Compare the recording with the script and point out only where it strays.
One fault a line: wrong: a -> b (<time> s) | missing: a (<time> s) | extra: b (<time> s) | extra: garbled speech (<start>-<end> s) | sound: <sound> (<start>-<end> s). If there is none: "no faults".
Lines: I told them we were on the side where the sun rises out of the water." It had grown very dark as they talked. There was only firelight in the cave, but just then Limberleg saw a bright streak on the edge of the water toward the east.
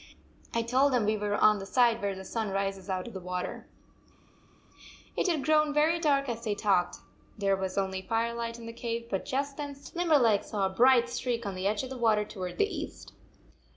no faults